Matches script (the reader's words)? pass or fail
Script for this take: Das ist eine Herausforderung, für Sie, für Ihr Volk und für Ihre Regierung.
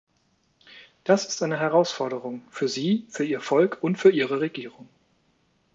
pass